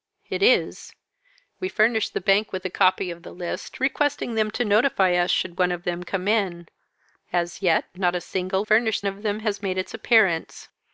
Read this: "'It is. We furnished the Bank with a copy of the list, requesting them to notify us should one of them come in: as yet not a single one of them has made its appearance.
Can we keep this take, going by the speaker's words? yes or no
no